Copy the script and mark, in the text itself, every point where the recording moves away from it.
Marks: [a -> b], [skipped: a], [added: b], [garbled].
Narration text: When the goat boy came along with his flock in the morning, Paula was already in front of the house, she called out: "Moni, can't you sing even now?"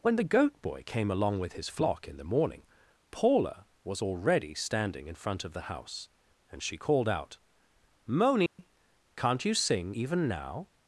When the goat boy came along with his flock in the morning, Paula was already [added: standing] in front of the house, [added: and] she called out: "Moni, can't you sing even now?"